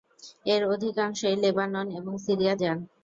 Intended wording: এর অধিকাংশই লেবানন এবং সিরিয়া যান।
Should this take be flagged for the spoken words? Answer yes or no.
no